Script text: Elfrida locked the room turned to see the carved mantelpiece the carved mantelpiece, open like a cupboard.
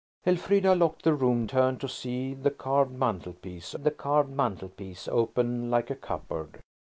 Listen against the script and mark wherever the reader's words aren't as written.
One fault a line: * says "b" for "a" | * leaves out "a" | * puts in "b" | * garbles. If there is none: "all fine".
all fine